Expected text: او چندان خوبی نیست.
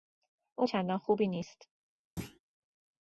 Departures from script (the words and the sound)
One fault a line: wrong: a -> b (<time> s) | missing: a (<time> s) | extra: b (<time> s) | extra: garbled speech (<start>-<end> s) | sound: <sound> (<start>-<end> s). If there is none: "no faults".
sound: thud (2.2-2.4 s)